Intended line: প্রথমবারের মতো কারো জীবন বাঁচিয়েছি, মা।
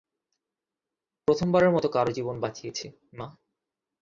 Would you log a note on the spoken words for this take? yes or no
no